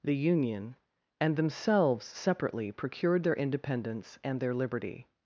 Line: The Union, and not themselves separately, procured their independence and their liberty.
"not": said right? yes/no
no